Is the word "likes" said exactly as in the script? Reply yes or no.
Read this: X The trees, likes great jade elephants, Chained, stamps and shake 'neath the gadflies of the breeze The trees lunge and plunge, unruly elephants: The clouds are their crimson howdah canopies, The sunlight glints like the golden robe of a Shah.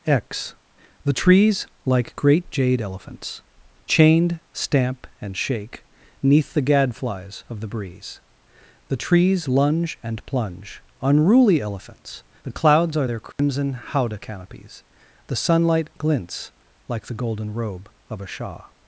no